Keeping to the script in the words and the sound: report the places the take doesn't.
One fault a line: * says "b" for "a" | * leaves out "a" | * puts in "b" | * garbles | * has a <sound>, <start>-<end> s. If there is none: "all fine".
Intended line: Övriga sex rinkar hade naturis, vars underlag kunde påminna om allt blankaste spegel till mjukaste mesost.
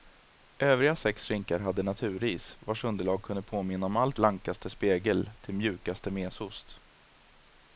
all fine